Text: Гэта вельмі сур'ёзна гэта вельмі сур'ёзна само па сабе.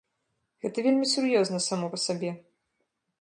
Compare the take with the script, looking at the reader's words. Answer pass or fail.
fail